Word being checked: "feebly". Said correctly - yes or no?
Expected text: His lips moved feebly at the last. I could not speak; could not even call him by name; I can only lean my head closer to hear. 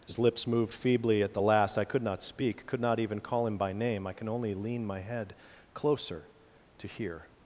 yes